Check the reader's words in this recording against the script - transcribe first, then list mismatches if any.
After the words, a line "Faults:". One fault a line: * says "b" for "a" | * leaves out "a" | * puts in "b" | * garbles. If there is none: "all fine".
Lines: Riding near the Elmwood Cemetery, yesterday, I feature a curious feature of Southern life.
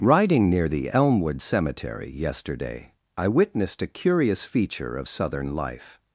Riding near the Elmwood Cemetery, yesterday, I witnessed a curious feature of Southern life.
Faults:
* says "witnessed" for "feature"